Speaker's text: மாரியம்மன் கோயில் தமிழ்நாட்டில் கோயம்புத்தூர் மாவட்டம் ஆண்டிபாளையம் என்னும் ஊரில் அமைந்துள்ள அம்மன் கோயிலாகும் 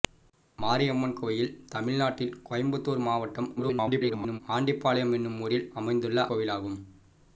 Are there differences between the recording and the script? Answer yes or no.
yes